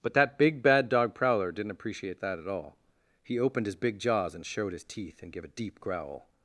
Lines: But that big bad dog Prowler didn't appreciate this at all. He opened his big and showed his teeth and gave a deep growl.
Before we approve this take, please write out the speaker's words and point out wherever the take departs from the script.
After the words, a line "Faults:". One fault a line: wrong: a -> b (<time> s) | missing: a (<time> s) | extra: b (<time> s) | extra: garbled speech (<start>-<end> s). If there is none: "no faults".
But that big bad dog Prowler didn't appreciate that at all. He opened his big jaws and showed his teeth and gave a deep growl.
Faults:
wrong: this -> that (2.2 s)
extra: jaws (4.0 s)